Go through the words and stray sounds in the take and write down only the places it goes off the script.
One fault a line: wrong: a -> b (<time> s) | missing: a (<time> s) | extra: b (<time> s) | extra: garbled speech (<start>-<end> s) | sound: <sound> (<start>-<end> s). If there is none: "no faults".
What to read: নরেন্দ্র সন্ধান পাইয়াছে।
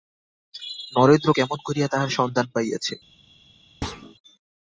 extra: কেমন করিয়া তাহার (1.3 s)
sound: thud (3.8-4.1 s)